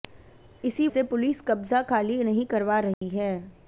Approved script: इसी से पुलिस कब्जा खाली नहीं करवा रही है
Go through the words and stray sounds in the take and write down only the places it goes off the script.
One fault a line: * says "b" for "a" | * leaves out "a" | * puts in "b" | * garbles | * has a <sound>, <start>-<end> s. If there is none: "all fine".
* has a dropout, 2.9-3.0 s